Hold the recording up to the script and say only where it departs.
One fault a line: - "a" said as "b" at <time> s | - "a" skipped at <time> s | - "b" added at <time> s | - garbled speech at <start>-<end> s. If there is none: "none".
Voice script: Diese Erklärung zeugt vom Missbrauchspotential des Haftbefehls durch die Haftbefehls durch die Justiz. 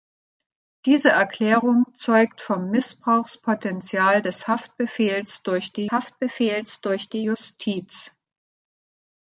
none